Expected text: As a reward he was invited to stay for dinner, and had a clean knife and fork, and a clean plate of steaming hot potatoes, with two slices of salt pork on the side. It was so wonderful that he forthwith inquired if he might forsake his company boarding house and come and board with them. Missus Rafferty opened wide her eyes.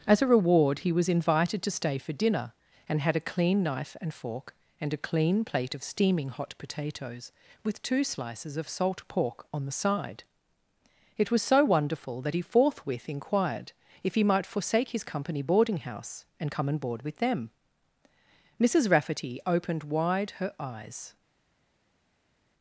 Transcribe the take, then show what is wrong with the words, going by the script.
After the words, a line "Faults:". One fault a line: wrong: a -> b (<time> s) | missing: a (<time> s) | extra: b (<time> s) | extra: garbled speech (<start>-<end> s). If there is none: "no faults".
As a reward he was invited to stay for dinner, and had a clean knife and fork, and a clean plate of steaming hot potatoes, with two slices of salt pork on the side. It was so wonderful that he forthwith inquired if he might forsake his company boarding house and come and board with them. Missus Rafferty opened wide her eyes.
Faults:
no faults